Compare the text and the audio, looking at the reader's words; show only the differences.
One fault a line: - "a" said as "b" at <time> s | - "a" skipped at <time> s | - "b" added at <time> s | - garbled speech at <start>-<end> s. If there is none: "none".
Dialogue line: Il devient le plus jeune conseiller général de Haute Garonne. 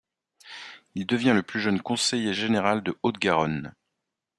none